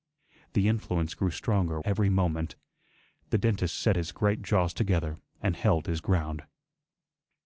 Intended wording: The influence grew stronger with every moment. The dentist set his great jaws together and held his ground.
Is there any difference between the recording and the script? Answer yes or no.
yes